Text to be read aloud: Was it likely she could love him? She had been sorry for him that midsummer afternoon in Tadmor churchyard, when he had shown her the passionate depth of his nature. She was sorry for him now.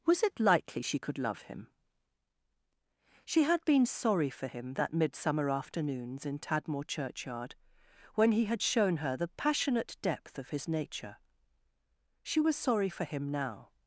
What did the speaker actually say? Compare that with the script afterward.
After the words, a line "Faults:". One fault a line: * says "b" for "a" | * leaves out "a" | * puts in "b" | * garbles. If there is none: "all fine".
Was it likely she could love him? She had been sorry for him that midsummer afternoons in Tadmor churchyard, when he had shown her the passionate depth of his nature. She was sorry for him now.
Faults:
* says "afternoons" for "afternoon"